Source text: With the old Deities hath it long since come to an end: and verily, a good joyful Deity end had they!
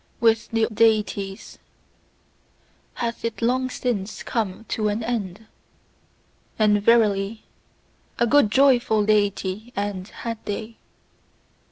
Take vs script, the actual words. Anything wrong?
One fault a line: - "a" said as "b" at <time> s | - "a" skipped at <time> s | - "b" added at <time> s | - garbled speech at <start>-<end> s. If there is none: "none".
- "old" skipped at 0.7 s